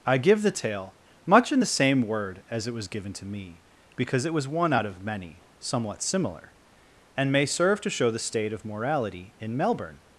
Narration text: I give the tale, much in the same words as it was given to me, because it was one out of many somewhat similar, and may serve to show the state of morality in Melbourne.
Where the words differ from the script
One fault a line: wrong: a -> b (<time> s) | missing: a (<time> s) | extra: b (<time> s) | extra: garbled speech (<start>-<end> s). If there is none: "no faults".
wrong: words -> word (2.0 s)